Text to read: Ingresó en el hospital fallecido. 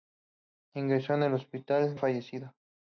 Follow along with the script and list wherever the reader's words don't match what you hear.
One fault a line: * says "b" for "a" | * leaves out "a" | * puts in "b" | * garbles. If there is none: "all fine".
all fine